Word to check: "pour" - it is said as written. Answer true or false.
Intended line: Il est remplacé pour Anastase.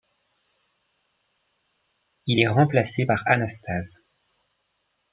false